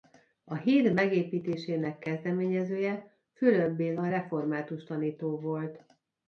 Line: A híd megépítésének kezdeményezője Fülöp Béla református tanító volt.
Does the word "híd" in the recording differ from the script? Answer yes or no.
no